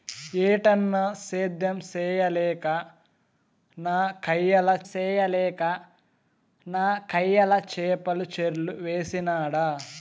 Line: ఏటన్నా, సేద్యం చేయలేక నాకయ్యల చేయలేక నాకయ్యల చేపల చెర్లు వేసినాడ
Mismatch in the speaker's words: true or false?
false